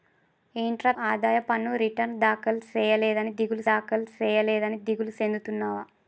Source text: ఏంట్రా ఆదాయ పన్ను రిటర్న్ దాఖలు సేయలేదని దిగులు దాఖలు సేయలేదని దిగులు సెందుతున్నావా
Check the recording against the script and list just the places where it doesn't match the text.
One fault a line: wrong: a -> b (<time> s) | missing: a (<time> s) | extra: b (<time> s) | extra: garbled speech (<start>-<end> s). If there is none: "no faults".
no faults